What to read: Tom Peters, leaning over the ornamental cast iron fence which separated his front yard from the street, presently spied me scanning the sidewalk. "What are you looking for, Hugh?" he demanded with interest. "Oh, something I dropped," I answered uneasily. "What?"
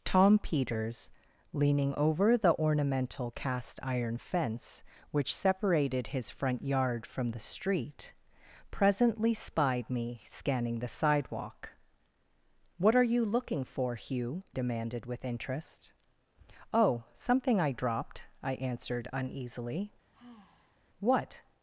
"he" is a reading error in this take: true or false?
true